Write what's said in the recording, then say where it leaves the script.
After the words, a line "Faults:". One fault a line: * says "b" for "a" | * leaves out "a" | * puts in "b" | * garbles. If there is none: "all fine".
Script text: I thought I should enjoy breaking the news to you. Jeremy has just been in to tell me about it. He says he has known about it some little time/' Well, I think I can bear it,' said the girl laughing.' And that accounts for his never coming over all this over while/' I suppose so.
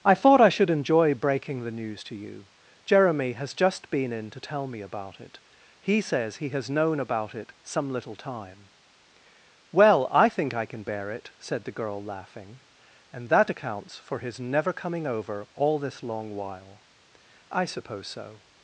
I thought I should enjoy breaking the news to you. Jeremy has just been in to tell me about it. He says he has known about it some little time/' Well, I think I can bear it,' said the girl laughing.' And that accounts for his never coming over all this long while/' I suppose so.
Faults:
* says "long" for "over"